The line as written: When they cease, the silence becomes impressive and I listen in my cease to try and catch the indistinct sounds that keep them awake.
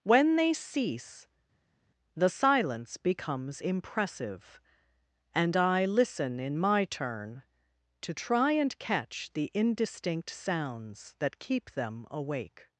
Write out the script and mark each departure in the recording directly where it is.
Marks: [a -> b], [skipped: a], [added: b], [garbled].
When they cease, the silence becomes impressive and I listen in my [cease -> turn] to try and catch the indistinct sounds that keep them awake.